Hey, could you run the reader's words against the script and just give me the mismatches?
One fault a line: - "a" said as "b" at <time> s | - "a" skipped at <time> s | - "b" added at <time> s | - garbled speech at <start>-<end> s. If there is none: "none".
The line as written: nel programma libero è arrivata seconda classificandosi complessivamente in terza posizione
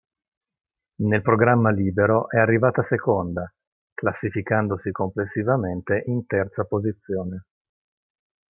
none